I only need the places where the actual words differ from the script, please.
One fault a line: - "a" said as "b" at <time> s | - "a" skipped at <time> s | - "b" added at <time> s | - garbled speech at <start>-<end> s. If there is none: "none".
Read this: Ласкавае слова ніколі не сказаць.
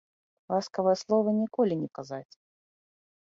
none